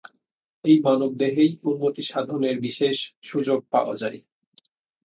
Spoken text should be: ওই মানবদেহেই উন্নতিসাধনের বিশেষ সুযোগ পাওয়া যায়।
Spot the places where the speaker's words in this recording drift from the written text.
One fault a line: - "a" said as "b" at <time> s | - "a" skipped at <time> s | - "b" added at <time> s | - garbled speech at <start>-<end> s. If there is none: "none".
- "ওই" said as "এই" at 0.7 s